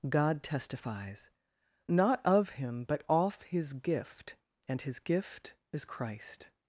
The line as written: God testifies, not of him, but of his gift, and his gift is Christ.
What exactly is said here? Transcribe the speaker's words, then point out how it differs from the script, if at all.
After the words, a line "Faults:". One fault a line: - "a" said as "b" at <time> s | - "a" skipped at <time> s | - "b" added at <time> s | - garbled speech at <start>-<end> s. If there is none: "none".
God testifies, not of him, but off his gift, and his gift is Christ.
Faults:
- "of" said as "off" at 3.1 s